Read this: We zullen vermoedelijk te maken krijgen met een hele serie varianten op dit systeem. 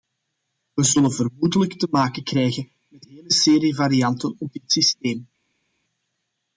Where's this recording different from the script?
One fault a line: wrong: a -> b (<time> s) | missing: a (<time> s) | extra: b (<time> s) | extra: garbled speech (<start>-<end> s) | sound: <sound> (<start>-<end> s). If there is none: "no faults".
missing: een (3.1 s)